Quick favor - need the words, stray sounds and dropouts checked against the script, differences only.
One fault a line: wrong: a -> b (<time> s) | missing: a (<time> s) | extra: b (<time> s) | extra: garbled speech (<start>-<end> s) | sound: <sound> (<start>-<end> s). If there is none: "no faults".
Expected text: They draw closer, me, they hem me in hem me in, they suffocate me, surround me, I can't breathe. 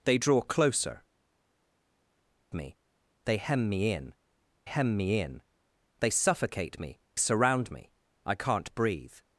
no faults